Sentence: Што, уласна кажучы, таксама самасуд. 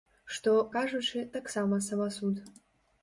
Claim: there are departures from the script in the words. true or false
true